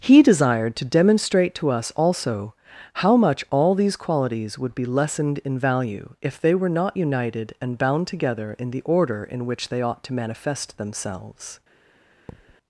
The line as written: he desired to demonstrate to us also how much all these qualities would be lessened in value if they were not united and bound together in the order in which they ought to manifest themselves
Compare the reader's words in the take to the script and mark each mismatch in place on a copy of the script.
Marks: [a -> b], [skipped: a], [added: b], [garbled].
he desired to demonstrate to us also how much all these qualities would be lessened in value if they were not united and bound together in the order in which they ought to manifest themselves